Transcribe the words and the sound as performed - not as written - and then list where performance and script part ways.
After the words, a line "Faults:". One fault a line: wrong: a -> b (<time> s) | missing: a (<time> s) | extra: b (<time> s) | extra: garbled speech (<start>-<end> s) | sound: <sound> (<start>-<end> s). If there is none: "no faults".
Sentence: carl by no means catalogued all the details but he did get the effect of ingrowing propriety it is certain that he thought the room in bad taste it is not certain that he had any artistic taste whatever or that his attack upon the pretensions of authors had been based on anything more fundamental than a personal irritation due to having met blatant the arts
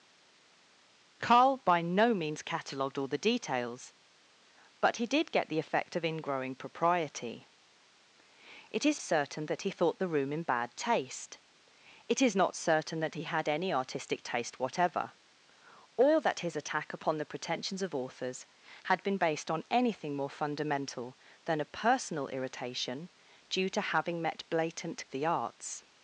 carl by no means catalogued all the details but he did get the effect of ingrowing propriety it is certain that he thought the room in bad taste it is not certain that he had any artistic taste whatever or that his attack upon the pretensions of authors had been based on anything more fundamental than a personal irritation due to having met blatant the arts
Faults:
no faults